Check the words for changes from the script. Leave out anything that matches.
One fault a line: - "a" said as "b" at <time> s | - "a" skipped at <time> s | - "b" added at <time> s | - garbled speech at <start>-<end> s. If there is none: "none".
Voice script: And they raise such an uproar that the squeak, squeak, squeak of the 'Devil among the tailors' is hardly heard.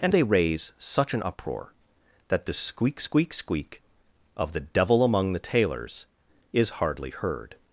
none